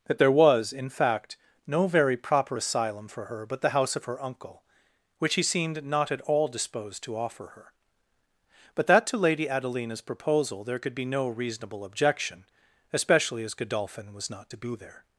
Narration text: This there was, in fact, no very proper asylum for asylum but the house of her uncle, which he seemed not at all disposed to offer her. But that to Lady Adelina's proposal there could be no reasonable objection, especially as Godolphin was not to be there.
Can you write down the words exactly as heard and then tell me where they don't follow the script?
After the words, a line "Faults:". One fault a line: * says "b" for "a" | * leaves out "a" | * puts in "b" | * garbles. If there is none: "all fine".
That there was, in fact, no very proper asylum for her but the house of her uncle, which he seemed not at all disposed to offer her. But that to Lady Adelina's proposal there could be no reasonable objection, especially as Godolphin was not to be there.
Faults:
* says "That" for "This"
* says "her" for "asylum"